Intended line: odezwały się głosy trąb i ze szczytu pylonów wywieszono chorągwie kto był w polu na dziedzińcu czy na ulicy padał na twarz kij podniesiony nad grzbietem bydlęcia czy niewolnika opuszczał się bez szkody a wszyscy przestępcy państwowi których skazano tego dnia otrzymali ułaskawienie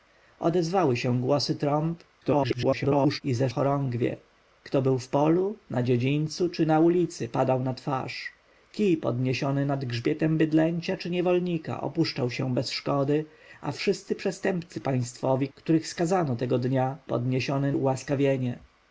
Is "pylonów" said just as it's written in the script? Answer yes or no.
no